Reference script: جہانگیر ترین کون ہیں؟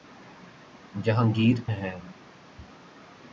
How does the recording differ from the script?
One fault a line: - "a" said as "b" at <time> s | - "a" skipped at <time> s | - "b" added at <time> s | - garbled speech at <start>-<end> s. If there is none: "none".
- "ترین کون" skipped at 1.6 s